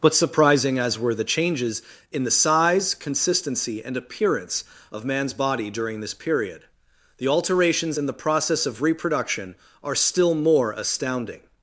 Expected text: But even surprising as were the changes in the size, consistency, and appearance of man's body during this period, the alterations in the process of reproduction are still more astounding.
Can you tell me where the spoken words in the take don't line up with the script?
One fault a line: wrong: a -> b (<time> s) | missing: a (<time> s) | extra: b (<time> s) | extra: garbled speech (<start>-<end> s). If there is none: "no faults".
missing: even (0.1 s)